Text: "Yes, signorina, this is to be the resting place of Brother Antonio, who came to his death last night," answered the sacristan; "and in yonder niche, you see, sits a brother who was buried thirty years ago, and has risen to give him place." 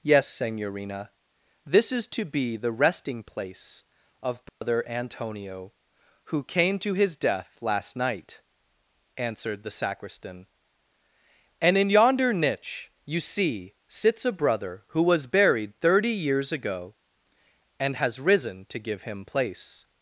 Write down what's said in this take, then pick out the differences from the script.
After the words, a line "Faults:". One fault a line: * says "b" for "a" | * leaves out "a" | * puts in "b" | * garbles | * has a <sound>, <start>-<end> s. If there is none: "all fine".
"Yes, signorina, this is to be the resting place of Brother Antonio, who came to his death last night," answered the sacristan; "and in yonder niche, you see, sits a brother who was buried thirty years ago, and has risen to give him place."
Faults:
* has a dropout, 4.5-4.6 s